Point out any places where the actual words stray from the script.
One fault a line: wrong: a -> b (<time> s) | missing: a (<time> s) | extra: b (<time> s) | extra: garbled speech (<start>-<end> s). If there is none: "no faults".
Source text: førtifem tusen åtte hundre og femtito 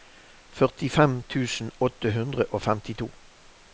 no faults